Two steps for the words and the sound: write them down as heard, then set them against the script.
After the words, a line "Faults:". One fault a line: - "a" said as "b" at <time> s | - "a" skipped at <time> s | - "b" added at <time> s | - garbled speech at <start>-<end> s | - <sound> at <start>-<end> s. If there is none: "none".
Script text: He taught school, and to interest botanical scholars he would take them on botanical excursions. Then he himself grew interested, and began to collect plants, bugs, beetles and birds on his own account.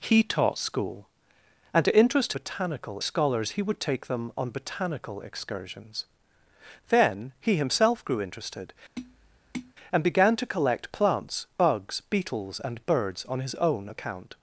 He taught school, and to interest botanical scholars he would take them on botanical excursions. Then he himself grew interested, and began to collect plants, bugs, beetles and birds on his own account.
Faults:
- tap at 9.0-9.7 s